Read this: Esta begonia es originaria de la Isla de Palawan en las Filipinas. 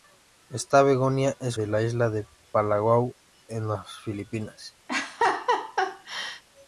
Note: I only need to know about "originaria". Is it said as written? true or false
false